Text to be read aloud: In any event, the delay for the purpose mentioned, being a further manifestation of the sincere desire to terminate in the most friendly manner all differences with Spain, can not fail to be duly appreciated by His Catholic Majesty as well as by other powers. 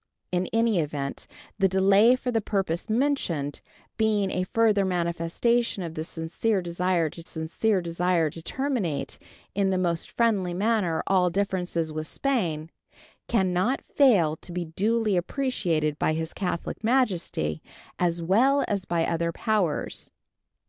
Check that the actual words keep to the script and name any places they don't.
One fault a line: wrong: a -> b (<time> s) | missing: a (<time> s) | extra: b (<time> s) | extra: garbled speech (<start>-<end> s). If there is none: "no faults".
extra: sincere desire to (7.2 s)